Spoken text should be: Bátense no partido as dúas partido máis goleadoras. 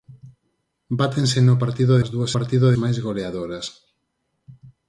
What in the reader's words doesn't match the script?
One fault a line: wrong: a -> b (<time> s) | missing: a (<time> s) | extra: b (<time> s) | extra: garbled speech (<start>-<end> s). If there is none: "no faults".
no faults